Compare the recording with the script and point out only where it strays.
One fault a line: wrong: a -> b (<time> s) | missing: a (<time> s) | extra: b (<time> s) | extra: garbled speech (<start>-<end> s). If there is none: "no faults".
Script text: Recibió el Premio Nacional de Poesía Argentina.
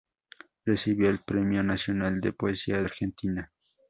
no faults